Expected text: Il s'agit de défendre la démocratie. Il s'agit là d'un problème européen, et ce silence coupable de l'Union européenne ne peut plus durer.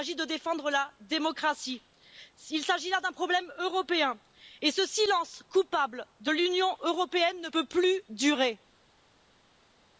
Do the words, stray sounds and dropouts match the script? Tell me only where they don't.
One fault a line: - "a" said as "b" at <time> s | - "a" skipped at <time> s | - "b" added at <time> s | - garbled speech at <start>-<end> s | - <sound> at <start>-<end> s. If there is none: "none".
none